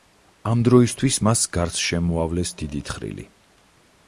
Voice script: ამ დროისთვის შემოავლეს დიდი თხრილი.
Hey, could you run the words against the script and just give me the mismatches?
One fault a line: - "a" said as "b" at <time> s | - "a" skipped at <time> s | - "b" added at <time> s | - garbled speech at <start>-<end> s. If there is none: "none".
- "მას გარს" added at 1.3 s